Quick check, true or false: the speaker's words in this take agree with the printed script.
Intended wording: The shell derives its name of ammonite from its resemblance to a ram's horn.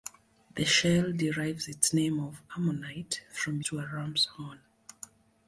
false